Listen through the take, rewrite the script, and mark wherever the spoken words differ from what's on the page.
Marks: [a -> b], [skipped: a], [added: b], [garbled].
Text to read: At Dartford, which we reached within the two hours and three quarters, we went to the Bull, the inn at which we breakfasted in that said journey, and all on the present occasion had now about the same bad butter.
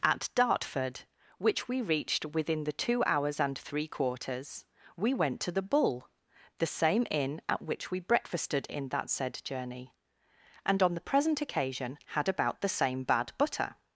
At Dartford, which we reached within the two hours and three quarters, we went to the Bull, the [added: same] inn at which we breakfasted in that said journey, and [skipped: all] on the present occasion had [skipped: now] about the same bad butter.